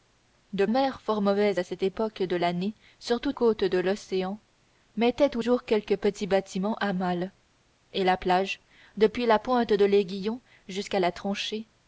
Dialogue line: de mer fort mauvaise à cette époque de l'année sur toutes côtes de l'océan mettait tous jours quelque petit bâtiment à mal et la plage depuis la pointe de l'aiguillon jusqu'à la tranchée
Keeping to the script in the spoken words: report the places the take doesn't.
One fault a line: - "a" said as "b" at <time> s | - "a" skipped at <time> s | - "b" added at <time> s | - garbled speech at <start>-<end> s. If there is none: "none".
none